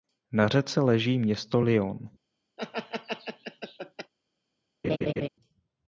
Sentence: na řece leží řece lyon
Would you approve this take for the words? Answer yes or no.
no